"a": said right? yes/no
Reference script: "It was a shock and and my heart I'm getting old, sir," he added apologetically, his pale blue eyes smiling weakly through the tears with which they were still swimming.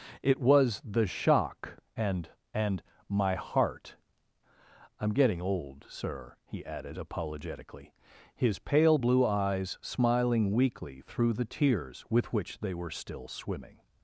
no